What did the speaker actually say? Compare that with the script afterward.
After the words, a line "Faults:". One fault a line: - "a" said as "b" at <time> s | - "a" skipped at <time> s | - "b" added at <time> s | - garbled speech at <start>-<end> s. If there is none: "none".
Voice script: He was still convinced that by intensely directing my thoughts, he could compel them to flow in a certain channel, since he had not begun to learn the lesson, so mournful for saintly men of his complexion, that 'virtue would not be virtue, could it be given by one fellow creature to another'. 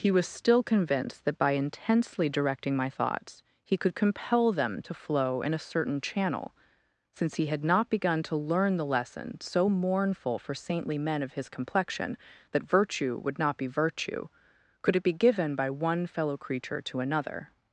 He was still convinced that by intensely directing my thoughts, he could compel them to flow in a certain channel, since he had not begun to learn the lesson, so mournful for saintly men of his complexion, that 'virtue would not be virtue, could it be given by one fellow creature to another'.
Faults:
none